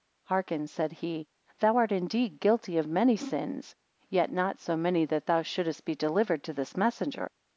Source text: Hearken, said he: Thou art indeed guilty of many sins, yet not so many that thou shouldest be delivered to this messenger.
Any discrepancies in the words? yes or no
no